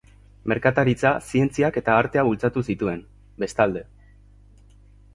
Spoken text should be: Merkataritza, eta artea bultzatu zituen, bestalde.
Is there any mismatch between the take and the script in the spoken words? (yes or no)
yes